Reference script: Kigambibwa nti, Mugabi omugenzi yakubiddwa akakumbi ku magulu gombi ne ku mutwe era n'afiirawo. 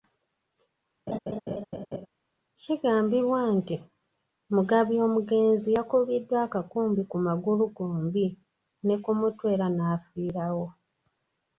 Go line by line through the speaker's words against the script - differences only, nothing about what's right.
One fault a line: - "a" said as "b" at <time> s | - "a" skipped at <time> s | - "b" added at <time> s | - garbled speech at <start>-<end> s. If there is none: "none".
none